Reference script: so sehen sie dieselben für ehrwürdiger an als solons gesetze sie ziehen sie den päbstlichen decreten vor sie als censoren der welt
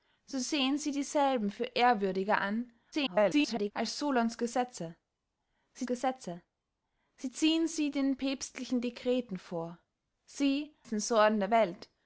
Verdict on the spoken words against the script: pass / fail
fail